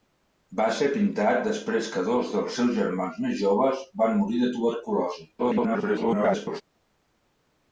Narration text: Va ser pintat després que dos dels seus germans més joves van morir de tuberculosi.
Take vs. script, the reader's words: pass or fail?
fail